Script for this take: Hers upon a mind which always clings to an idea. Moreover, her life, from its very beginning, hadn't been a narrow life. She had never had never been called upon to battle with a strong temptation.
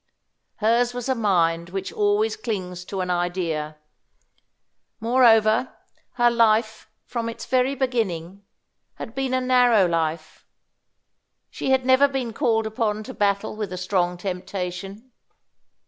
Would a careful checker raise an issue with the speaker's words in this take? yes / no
yes